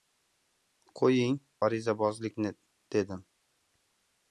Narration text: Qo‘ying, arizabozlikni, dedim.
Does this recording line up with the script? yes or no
yes